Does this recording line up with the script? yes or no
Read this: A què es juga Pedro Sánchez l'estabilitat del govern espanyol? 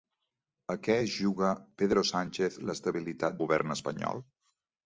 no